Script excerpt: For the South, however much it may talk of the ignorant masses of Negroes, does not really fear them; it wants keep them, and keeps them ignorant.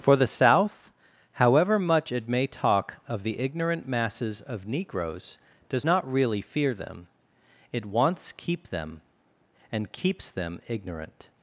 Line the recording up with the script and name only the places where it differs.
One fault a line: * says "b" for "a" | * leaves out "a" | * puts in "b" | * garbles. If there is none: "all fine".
all fine